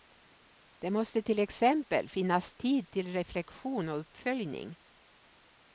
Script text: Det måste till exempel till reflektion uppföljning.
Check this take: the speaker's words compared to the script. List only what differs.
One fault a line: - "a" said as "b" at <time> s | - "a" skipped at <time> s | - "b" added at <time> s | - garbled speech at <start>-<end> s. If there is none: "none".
- "finnas tid" added at 2.1 s
- "och" added at 3.9 s